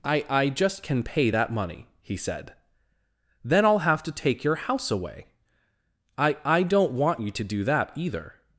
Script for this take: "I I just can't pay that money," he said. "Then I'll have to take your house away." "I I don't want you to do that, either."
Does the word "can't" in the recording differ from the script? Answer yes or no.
yes